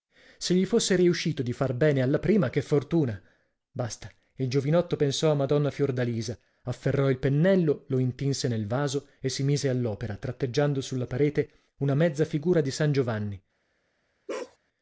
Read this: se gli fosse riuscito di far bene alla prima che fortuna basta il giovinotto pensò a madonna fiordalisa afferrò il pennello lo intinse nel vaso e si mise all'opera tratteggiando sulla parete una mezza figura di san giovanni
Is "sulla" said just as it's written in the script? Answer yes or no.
yes